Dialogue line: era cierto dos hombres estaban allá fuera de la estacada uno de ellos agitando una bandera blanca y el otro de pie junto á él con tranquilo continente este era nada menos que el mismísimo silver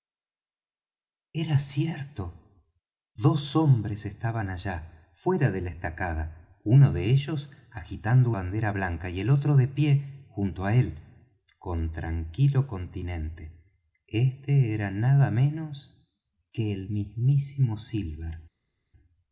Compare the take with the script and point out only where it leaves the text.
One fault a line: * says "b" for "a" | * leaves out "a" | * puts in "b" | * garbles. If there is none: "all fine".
* leaves out "una"